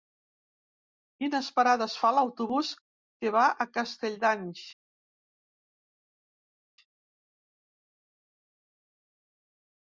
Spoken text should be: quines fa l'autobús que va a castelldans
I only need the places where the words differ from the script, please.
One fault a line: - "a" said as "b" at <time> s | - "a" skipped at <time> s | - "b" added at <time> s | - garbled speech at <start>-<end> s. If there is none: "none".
- "parades" added at 1.6 s